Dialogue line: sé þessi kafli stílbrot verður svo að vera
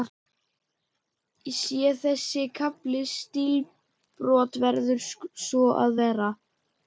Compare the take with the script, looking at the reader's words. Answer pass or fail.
pass